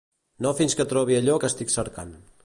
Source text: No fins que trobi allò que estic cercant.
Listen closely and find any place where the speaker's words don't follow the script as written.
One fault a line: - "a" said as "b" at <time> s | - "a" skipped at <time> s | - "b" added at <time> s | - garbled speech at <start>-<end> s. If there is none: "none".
none